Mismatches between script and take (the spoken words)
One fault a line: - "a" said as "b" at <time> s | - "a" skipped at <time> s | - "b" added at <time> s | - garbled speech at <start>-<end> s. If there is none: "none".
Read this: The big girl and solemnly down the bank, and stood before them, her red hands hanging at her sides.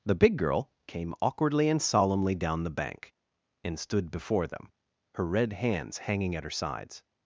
- "came awkwardly" added at 0.9 s